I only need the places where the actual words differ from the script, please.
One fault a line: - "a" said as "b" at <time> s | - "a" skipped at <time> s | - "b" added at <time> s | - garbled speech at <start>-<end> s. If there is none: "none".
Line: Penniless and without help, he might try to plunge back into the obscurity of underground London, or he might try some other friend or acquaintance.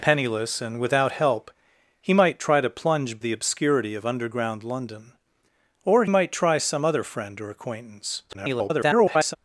- "back into" skipped at 3.2 s
- "he" skipped at 6.1 s
- garbled speech at 8.3-9.4 s